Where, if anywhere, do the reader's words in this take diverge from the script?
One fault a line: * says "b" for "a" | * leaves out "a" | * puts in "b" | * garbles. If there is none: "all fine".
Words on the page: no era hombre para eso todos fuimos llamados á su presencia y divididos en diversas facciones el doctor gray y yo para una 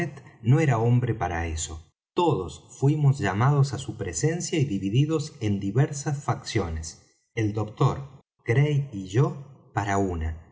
all fine